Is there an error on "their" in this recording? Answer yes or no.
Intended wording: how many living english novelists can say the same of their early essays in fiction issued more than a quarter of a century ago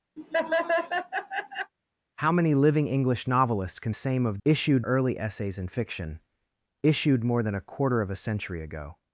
yes